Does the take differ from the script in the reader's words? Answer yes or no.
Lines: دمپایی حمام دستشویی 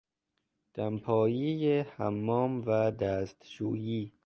yes